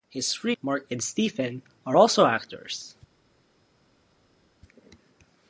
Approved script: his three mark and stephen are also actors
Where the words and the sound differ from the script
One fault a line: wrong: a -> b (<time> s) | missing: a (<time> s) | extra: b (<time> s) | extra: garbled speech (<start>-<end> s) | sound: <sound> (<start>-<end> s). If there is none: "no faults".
no faults